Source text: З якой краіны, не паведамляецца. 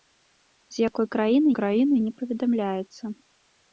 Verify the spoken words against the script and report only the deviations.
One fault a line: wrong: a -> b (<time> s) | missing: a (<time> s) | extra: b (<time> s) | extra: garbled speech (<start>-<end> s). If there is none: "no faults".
extra: краіны (1.6 s)